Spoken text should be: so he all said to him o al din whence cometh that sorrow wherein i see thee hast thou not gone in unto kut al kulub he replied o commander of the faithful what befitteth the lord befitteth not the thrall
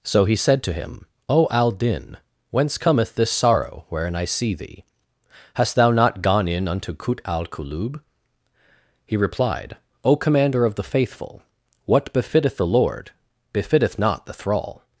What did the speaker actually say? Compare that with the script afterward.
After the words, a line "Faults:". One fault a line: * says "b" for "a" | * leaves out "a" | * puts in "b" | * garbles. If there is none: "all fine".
so he said to him o al din whence cometh this sorrow wherein i see thee hast thou not gone in unto kut al kulub he replied o commander of the faithful what befitteth the lord befitteth not the thrall
Faults:
* leaves out "all"
* says "this" for "that"